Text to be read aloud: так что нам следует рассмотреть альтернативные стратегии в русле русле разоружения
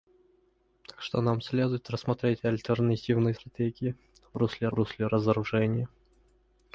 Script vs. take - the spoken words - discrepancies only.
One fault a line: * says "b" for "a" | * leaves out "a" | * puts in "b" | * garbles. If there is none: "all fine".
all fine